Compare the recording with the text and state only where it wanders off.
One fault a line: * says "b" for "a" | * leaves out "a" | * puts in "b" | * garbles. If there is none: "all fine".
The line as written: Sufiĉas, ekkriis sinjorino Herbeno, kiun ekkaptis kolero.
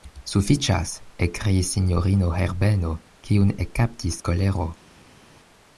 all fine